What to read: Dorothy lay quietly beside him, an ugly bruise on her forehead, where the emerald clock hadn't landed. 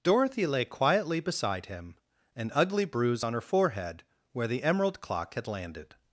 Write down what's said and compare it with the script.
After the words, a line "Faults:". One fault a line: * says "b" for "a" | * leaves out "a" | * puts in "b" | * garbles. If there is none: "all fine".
Dorothy lay quietly beside him, an ugly bruise on her forehead, where the emerald clock had landed.
Faults:
* says "had" for "hadn't"